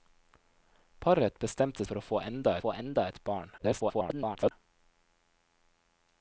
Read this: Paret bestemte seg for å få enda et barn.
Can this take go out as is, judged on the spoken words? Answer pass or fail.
fail